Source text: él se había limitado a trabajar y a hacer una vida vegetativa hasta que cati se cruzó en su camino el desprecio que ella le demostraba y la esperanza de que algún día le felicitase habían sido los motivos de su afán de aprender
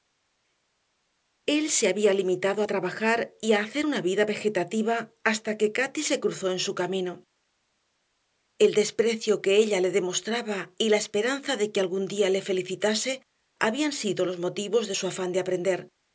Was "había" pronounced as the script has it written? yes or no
yes